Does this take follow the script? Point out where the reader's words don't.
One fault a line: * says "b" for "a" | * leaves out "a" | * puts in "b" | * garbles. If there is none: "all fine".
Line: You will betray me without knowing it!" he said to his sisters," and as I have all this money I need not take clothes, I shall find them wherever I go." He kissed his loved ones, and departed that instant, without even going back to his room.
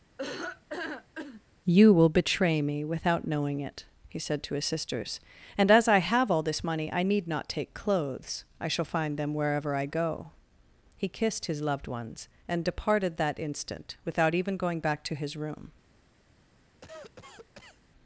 all fine